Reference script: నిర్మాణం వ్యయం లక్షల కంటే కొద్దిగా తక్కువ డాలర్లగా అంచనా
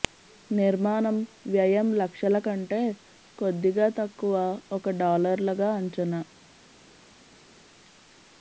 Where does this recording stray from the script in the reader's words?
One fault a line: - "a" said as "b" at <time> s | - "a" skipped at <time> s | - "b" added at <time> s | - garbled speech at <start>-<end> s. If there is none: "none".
- "ఒక" added at 4.8 s